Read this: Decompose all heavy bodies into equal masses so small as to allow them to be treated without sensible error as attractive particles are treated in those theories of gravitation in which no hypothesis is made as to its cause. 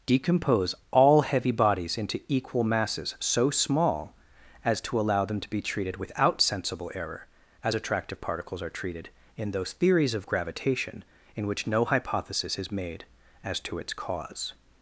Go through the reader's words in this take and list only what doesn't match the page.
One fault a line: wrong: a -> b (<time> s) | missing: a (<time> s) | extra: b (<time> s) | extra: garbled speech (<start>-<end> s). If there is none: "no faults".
no faults